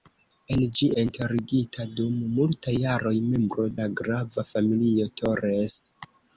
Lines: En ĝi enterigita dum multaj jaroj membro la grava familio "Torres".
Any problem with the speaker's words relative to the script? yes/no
no